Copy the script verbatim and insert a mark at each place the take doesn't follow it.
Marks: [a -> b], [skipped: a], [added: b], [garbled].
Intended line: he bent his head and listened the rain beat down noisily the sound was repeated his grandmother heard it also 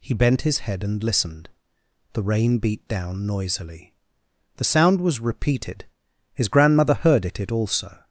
he bent his head and listened the rain beat down noisily the sound was repeated his grandmother heard it [added: it] also